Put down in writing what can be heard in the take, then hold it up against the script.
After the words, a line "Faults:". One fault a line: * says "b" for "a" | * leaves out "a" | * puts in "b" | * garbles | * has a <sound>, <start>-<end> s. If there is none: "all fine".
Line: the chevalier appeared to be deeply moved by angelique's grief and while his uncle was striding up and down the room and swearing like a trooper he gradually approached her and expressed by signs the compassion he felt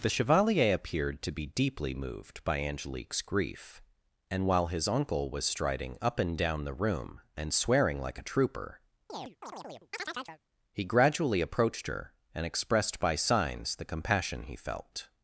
the chevalier appeared to be deeply moved by angelique's grief and while his uncle was striding up and down the room and swearing like a trooper he gradually approached her and expressed by signs the compassion he felt
Faults:
* has a chirp, 9.1-10.4 s